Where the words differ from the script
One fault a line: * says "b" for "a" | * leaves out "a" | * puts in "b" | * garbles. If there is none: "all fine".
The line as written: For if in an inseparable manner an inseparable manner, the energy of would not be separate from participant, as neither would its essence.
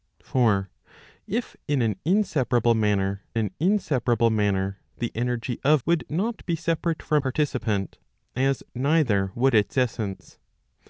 all fine